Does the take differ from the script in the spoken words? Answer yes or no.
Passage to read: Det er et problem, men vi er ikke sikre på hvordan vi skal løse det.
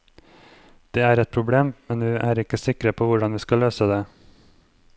no